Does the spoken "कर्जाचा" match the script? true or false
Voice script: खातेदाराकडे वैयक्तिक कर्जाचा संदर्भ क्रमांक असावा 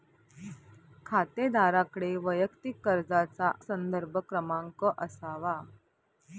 true